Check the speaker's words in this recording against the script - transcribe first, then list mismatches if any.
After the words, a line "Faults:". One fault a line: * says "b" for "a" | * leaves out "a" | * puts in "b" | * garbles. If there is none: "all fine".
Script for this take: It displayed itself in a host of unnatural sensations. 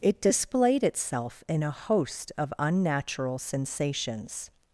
It displayed itself in a host of unnatural sensations.
Faults:
all fine